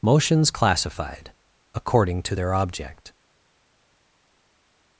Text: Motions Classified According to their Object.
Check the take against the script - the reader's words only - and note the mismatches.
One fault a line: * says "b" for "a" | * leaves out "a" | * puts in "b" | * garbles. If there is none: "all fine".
all fine